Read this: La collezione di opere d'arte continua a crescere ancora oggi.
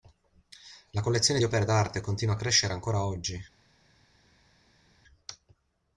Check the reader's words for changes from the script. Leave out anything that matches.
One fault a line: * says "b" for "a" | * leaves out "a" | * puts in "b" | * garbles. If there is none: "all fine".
all fine